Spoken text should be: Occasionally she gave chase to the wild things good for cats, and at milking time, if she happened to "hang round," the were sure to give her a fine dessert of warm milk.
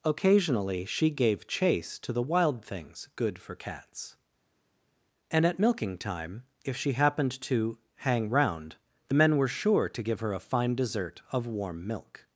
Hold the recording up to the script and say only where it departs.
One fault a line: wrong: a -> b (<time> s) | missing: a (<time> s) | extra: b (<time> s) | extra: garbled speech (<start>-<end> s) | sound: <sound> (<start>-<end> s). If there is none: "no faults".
extra: men (9.1 s)